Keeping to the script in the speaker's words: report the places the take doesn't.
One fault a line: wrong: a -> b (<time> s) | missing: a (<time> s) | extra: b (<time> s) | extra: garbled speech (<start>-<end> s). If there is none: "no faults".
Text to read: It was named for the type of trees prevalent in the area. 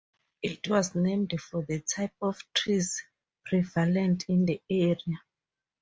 no faults